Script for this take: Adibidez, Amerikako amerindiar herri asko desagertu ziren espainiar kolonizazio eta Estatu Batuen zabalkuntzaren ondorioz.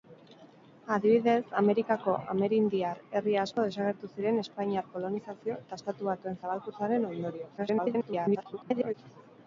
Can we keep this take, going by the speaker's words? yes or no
no